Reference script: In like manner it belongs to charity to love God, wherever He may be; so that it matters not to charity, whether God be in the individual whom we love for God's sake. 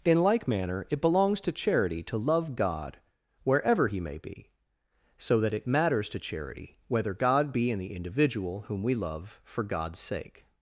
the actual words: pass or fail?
fail